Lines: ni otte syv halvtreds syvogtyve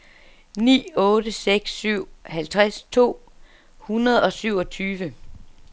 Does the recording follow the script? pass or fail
fail